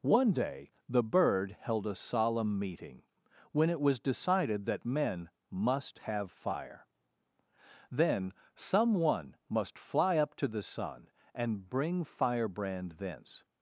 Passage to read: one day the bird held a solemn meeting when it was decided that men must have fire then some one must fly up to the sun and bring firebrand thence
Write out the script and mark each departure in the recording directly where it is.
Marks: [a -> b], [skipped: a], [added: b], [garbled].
one day the bird held a solemn meeting when it was decided that men must have fire then some one must fly up to the sun and bring firebrand thence